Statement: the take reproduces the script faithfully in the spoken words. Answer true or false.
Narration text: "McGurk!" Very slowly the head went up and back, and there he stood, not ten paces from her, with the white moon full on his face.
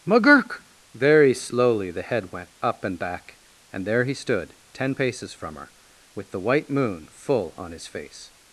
false